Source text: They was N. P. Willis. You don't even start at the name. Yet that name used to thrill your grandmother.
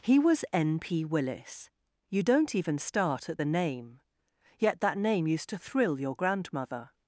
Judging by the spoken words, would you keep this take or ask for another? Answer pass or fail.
fail